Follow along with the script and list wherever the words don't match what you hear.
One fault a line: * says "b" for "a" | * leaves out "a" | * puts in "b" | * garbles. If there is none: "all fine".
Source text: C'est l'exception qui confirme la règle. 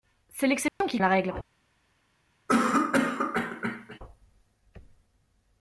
* leaves out "confirme"